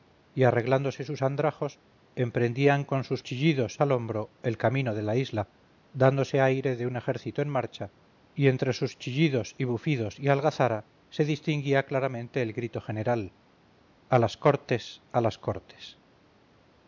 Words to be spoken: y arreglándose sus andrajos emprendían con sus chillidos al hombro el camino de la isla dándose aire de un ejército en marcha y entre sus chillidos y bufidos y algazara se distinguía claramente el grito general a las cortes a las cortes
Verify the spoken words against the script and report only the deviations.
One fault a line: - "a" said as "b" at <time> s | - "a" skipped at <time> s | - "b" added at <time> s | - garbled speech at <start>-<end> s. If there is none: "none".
none